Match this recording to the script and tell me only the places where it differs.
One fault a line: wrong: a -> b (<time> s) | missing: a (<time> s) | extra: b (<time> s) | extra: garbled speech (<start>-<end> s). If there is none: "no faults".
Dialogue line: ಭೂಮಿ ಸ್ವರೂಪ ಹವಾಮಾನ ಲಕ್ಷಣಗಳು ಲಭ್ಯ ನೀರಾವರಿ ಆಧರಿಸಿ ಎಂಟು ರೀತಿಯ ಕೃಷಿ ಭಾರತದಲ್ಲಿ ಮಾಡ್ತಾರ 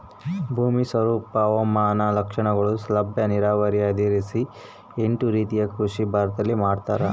no faults